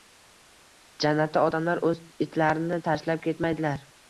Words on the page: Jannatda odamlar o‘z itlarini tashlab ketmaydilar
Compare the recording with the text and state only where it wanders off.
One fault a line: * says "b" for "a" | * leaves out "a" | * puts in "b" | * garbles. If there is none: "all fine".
all fine